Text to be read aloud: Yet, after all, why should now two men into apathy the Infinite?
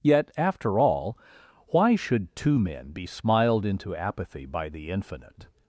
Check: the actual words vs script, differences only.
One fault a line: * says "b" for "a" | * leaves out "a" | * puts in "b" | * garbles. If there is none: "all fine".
* leaves out "now"
* puts in "be smiled"
* puts in "by"